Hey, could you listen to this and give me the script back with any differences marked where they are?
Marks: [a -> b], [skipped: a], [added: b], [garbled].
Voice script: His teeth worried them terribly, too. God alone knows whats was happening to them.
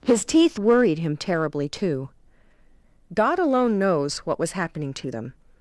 His teeth worried [them -> him] terribly, too. God alone knows [whats -> what] was happening to them.